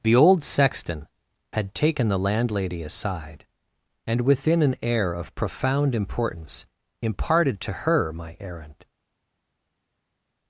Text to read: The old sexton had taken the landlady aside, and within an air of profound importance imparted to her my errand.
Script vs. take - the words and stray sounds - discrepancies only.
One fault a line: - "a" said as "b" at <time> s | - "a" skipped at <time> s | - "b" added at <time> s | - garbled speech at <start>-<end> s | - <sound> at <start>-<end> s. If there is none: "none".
none